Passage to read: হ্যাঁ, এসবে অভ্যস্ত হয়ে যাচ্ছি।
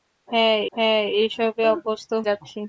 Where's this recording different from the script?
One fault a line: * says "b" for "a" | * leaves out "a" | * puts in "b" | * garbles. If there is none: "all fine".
* puts in "হ্যাঁ"
* leaves out "হয়ে"